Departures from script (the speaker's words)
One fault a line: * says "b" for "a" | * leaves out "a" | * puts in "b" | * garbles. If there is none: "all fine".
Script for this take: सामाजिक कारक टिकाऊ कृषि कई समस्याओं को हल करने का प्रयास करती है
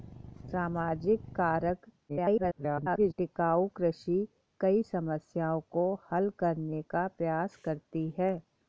* garbles